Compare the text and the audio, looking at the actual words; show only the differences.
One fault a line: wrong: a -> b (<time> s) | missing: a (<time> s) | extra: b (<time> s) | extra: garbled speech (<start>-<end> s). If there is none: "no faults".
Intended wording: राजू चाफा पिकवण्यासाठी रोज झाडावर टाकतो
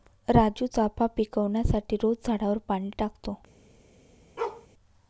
extra: पाणी (2.7 s)